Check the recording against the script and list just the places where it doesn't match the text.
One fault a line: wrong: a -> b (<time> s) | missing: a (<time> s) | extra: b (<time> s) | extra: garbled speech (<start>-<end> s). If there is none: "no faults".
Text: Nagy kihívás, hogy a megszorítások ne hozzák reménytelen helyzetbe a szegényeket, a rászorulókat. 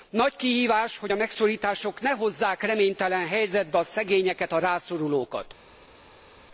no faults